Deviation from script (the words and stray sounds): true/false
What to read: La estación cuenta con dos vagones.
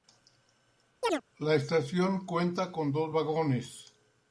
true